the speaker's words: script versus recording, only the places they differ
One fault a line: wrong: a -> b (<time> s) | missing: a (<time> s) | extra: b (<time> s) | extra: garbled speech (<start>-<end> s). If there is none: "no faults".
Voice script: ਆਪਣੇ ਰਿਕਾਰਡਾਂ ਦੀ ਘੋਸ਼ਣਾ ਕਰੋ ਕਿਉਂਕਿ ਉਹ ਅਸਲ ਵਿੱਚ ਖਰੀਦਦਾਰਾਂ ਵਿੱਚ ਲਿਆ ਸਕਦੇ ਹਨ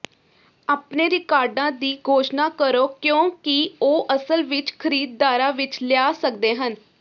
no faults